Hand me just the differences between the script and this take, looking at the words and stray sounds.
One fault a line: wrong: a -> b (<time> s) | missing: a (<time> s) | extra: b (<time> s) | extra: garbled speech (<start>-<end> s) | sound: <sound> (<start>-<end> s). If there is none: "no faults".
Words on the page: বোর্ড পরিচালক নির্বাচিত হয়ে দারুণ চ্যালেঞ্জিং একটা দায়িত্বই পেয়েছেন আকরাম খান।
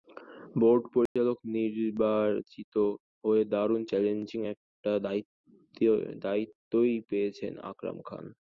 sound: dropout (1.1-1.2 s)